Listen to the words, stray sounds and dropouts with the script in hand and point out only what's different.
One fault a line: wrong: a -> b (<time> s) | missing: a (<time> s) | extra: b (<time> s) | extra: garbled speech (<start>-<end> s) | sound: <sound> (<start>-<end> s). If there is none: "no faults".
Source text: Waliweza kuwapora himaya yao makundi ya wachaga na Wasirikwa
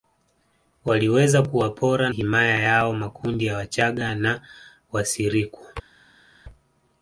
no faults